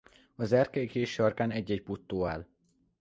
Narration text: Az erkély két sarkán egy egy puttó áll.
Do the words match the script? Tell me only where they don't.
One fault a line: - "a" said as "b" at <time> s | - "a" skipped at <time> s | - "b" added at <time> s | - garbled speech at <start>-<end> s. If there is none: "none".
none